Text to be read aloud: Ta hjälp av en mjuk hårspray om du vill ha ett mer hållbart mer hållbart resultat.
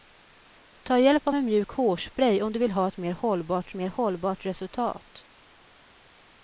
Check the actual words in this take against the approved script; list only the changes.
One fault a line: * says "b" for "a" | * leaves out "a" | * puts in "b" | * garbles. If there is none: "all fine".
all fine